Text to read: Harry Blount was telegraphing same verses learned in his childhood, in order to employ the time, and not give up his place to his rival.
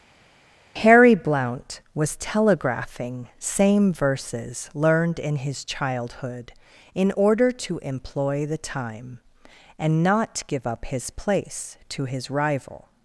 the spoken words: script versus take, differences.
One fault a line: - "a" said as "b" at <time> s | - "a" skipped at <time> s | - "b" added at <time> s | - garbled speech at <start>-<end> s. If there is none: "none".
none